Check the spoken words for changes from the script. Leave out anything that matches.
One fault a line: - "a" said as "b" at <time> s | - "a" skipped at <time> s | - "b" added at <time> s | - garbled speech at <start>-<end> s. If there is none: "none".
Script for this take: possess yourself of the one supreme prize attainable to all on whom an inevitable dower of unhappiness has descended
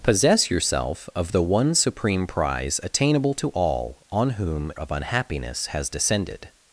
- "an inevitable dower" skipped at 4.7 s